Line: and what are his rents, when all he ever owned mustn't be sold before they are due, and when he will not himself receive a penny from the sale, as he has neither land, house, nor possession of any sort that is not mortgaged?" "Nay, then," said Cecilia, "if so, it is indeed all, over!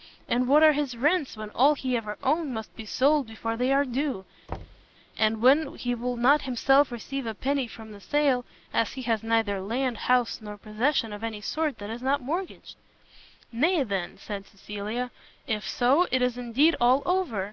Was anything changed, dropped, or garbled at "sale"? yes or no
no